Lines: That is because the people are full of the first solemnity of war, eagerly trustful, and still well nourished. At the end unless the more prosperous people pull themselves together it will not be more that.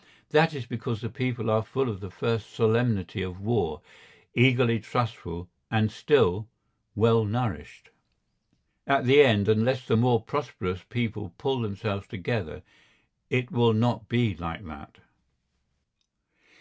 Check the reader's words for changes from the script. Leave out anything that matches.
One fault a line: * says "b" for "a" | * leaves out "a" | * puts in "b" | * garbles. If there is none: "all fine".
* says "like" for "more"